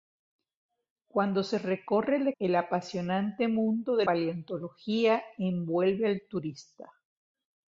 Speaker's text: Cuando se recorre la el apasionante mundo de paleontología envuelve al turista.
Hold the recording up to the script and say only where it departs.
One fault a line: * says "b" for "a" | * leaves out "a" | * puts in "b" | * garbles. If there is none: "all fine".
all fine